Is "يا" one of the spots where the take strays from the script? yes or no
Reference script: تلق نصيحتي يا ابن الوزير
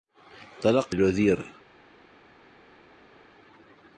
yes